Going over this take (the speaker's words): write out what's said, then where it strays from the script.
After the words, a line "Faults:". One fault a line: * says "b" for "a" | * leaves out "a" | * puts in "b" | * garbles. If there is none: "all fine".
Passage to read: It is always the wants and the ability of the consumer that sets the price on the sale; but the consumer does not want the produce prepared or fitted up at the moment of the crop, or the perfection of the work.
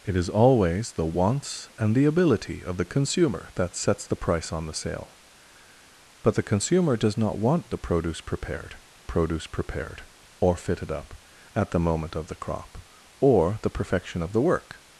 It is always the wants and the ability of the consumer that sets the price on the sale; but the consumer does not want the produce prepared produce prepared or fitted up at the moment of the crop, or the perfection of the work.
Faults:
* puts in "produce prepared"